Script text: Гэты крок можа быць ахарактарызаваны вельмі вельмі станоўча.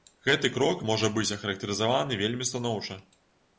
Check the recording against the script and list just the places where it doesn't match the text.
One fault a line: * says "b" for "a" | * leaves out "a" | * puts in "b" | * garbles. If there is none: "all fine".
* leaves out "вельмі"